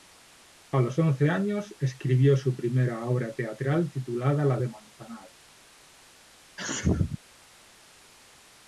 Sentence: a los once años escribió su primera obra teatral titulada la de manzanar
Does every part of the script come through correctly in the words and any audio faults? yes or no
no